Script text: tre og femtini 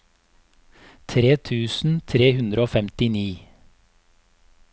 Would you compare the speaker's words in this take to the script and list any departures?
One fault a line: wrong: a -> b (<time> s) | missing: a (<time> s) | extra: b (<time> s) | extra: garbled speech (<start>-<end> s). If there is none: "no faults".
extra: tusen tre hundre (1.5 s)